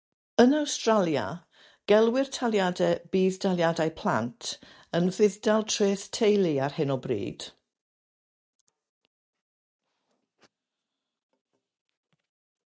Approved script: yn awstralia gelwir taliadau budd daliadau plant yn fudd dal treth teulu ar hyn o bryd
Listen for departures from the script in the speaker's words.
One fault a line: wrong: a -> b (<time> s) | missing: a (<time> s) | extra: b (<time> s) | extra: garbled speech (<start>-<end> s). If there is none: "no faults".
no faults